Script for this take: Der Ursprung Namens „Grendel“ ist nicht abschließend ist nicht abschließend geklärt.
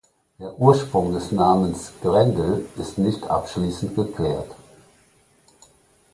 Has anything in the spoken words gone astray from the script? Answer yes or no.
yes